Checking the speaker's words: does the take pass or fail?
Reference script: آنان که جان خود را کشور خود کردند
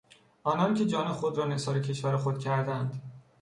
fail